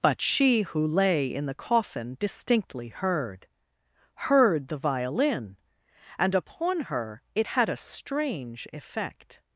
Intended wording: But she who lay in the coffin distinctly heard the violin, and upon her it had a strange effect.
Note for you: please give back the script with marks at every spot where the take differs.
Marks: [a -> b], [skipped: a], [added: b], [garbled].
But she who lay in the coffin distinctly heard [added: heard] the violin, and upon her it had a strange effect.